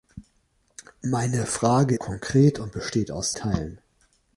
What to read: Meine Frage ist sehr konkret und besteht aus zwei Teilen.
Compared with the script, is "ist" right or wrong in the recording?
wrong